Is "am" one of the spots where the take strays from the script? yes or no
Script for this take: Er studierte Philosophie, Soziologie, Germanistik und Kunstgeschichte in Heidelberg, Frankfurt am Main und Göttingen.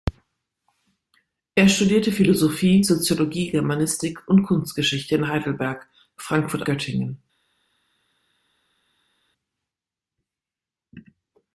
yes